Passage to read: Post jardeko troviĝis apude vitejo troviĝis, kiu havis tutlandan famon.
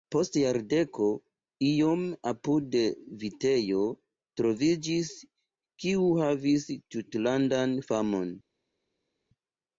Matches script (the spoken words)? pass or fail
fail